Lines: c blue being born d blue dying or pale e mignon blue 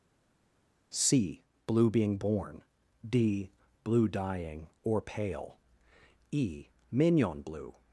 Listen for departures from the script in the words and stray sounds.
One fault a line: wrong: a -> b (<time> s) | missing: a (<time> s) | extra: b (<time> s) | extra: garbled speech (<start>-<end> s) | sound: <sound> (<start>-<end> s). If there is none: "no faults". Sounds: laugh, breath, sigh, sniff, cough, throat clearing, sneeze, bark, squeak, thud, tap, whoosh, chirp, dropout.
no faults